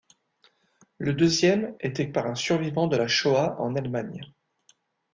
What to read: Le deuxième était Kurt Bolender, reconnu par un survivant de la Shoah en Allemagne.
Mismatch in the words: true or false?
true